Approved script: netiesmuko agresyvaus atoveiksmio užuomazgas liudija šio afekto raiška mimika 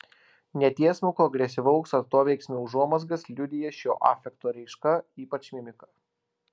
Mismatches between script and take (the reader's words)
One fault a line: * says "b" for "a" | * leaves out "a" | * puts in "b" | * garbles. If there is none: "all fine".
* puts in "ypač"